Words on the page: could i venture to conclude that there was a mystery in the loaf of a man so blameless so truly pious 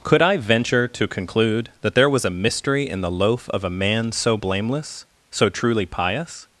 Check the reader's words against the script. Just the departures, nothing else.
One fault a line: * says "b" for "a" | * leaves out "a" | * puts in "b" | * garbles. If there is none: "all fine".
all fine